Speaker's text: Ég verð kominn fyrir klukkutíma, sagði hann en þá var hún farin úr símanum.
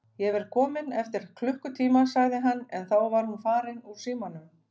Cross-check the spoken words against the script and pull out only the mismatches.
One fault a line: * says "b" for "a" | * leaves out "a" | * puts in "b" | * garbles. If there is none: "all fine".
* says "eftir" for "fyrir"